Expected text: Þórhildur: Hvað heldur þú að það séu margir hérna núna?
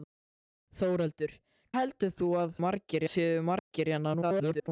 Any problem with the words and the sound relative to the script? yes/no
yes